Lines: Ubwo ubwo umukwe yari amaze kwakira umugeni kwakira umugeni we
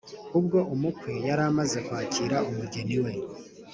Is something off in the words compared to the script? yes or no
yes